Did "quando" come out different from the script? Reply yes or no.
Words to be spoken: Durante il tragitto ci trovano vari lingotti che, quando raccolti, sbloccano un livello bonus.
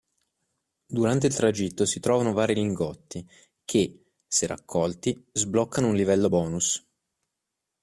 yes